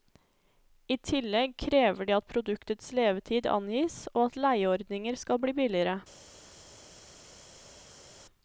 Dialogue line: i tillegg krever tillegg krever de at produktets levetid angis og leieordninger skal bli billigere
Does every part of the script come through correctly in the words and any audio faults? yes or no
no